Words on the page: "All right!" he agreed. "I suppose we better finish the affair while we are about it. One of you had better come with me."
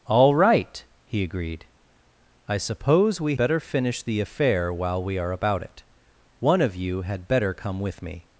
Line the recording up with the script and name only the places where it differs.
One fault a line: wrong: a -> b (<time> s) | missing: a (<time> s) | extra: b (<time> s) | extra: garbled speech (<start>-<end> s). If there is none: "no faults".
no faults